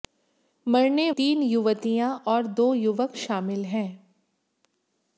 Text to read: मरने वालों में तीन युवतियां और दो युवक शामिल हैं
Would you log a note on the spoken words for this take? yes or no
yes